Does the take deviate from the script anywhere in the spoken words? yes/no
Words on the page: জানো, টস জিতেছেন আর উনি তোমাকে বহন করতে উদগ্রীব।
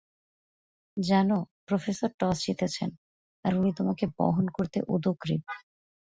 yes